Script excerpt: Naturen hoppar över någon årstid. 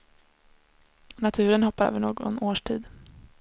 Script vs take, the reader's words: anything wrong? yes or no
no